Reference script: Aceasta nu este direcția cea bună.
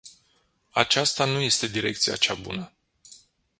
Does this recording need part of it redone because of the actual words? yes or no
no